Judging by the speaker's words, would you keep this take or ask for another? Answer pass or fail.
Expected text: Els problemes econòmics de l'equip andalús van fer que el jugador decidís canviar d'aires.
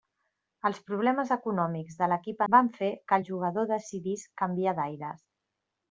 fail